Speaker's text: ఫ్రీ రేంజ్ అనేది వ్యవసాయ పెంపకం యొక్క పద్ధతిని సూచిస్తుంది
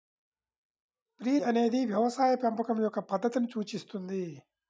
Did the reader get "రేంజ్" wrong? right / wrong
wrong